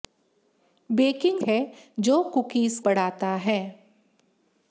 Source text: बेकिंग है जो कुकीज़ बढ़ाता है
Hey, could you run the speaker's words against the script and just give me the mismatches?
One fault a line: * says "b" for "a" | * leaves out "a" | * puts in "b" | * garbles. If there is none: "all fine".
all fine